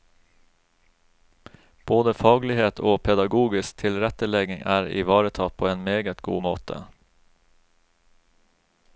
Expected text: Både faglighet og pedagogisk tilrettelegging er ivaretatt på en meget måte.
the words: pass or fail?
fail